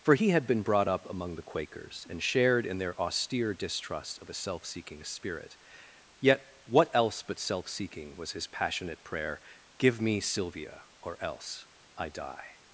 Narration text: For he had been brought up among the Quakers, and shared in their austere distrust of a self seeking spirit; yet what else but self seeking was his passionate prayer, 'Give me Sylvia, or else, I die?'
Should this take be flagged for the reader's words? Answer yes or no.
no